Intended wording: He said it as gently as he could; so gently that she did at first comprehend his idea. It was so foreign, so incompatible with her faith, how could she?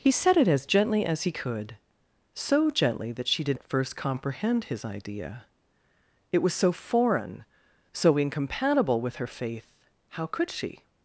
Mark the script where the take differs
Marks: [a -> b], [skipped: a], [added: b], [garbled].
He said it as gently as he could; so gently that she did at first comprehend his idea. It was so foreign, so incompatible with her faith, how could she?